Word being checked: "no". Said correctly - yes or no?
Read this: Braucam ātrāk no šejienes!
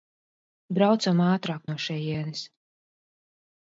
yes